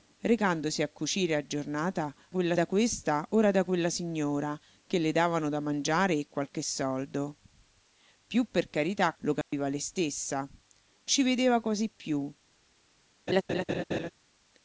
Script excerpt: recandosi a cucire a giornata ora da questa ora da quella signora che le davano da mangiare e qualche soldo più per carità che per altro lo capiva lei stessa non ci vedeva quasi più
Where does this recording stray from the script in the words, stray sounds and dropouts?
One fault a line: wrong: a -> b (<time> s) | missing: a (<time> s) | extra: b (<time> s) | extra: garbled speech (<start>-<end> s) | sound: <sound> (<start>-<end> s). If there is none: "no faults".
wrong: ora -> quella (2.3 s)
missing: che per altro (9.2 s)
sound: dropout (9.4-9.5 s)
missing: non (10.5 s)
sound: laugh (13.3-14.1 s)